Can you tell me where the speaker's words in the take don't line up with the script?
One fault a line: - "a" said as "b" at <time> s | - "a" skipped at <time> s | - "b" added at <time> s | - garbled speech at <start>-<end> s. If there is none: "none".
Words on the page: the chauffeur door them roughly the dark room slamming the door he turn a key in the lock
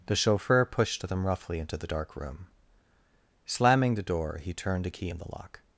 - "door" said as "pushed" at 0.7 s
- "into" added at 1.6 s
- "turn" said as "turned" at 4.5 s